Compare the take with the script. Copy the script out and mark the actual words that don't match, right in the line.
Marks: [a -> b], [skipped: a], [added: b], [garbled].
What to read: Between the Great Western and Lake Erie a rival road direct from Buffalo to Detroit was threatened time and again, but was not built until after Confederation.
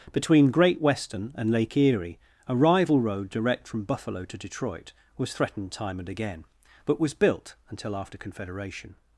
Between [skipped: the] Great Western and Lake Erie a rival road direct from Buffalo to Detroit was threatened time and again, but was [skipped: not] built until after Confederation.